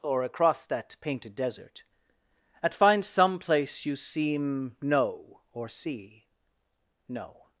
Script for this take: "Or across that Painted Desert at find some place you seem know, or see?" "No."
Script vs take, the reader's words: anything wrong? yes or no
no